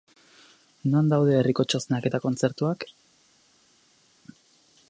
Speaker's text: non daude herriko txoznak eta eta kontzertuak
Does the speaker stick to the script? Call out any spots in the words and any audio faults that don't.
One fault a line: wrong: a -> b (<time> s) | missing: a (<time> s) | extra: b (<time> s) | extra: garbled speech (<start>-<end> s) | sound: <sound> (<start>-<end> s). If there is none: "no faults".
missing: eta (2.2 s)